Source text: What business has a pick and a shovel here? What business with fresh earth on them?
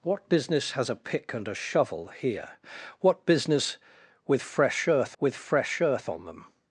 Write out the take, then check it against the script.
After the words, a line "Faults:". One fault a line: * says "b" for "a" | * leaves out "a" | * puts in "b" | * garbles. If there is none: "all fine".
What business has a pick and a shovel here? What business with fresh earth with fresh earth on them?
Faults:
* puts in "with fresh earth"